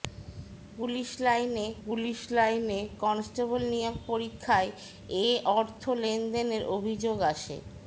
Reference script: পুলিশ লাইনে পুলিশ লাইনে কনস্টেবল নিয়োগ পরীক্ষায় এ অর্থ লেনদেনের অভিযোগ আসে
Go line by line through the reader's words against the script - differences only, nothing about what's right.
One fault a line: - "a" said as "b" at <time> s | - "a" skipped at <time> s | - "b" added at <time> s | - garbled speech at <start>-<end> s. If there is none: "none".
none